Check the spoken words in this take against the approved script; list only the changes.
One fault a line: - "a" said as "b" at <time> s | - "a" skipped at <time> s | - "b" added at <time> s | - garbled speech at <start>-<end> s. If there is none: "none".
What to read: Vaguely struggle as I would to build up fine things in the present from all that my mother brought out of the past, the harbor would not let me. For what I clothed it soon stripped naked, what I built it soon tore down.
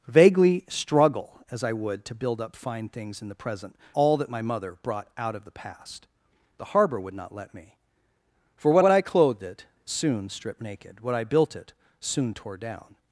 - "from" skipped at 3.8 s
- "what" added at 8.8 s